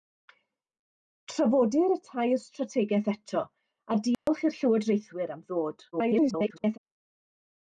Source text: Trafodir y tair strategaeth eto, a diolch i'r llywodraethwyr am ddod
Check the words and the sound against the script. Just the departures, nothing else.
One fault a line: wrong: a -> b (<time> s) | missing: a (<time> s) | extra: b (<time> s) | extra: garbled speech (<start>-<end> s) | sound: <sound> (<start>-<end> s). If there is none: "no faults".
sound: dropout (4.1-4.3 s)
extra: garbled speech (5.9-6.8 s)